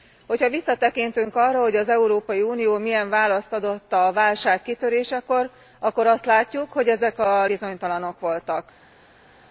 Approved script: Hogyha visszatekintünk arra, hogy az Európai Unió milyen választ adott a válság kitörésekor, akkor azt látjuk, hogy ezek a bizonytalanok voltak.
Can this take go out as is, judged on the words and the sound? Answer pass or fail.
pass